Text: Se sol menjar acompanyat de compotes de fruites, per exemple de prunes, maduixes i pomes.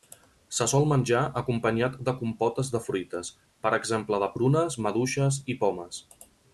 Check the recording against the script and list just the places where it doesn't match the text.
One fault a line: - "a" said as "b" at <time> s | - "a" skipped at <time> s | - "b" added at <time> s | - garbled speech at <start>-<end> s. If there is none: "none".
none